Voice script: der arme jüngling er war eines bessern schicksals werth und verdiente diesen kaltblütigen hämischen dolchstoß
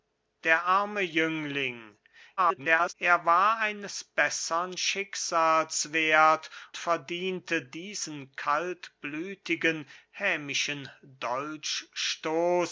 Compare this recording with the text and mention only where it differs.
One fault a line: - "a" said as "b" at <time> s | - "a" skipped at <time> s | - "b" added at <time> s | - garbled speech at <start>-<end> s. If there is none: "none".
- garbled speech at 2.4-2.9 s
- "und" skipped at 6.5 s